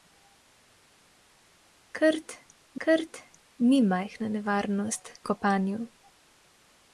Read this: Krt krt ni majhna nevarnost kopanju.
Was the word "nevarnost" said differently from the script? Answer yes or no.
no